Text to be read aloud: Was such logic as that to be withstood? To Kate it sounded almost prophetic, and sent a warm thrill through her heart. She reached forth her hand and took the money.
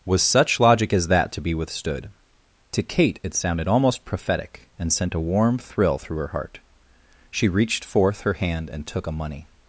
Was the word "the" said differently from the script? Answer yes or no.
yes